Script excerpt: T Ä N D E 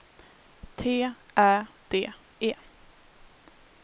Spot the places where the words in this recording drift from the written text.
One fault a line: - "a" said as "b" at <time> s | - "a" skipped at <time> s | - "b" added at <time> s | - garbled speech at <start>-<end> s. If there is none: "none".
- "N" skipped at 1.7 s